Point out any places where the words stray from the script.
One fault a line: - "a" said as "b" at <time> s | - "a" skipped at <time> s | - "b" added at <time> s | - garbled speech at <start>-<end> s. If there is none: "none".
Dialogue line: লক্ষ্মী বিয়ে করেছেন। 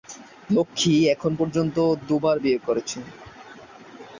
- "এখন পর্যন্ত দুবার" added at 1.1 s